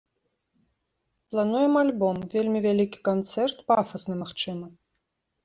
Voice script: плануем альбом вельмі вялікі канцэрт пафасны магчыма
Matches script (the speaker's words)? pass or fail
pass